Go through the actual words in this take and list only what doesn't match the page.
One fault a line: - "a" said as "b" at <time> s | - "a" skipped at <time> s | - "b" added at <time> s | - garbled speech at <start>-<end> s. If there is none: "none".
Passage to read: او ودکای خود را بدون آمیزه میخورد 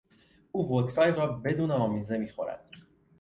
- "خود" skipped at 1.1 s